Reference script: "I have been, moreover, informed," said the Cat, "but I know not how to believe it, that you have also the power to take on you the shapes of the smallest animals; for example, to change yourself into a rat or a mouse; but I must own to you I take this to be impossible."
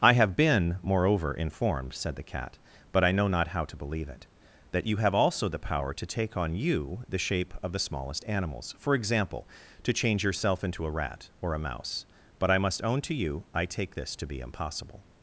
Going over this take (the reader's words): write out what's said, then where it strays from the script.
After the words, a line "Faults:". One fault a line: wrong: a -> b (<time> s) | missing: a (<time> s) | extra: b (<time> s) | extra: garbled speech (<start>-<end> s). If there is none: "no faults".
"I have been, moreover, informed," said the Cat, "but I know not how to believe it, that you have also the power to take on you the shape of the smallest animals; for example, to change yourself into a rat or a mouse; but I must own to you I take this to be impossible."
Faults:
wrong: shapes -> shape (7.2 s)